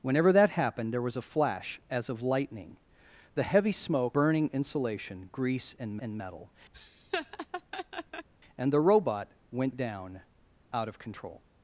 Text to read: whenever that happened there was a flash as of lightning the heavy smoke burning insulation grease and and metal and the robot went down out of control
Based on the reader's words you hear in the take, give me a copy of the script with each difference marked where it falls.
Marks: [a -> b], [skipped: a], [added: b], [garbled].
whenever that happened there was a flash as of lightning the heavy smoke burning insulation grease and and metal and the robot went down out of control